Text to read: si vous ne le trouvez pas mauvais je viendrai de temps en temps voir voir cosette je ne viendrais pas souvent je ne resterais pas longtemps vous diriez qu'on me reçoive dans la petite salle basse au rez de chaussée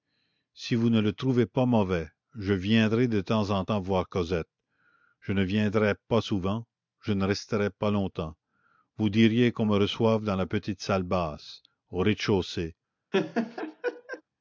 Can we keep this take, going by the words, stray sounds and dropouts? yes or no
no